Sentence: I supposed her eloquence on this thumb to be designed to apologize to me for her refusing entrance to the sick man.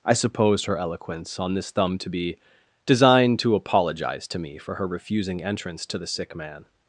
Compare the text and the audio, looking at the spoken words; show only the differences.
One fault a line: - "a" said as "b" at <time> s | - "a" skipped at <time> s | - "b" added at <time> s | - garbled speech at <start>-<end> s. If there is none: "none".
none